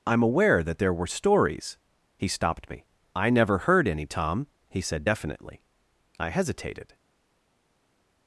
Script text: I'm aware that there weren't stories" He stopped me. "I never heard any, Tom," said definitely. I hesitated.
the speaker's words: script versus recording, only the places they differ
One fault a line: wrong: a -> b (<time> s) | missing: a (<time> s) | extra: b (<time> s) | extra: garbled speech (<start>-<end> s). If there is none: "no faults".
wrong: weren't -> were (0.9 s)
extra: he (4.7 s)